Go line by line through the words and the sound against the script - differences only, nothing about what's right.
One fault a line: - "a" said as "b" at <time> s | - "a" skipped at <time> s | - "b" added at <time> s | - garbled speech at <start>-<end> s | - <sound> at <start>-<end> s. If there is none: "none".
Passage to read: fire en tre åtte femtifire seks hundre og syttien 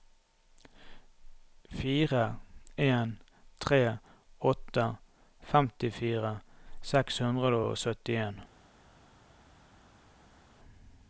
none